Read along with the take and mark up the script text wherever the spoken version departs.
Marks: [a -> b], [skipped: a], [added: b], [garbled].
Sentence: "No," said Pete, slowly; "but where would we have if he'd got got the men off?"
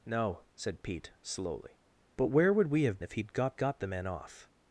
"No," said Pete, slowly; "but where would we have if he'd got got the men off?"